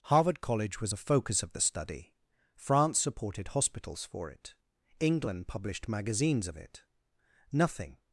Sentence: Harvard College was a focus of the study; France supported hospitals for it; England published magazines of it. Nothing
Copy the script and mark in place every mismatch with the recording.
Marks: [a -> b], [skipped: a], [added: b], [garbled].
Harvard College was a focus of the study; France supported hospitals for it; England published magazines of it. Nothing